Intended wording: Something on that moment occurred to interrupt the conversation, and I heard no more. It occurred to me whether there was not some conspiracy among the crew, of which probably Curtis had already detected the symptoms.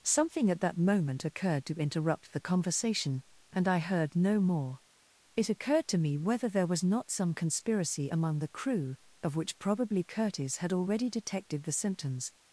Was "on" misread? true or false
true